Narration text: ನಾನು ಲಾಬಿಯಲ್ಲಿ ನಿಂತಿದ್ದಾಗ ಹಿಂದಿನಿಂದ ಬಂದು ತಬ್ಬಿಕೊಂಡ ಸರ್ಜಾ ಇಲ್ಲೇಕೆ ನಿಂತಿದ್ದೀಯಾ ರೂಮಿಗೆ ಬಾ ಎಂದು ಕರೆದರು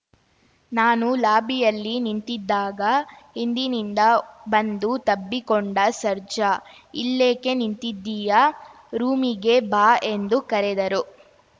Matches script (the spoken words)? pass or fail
pass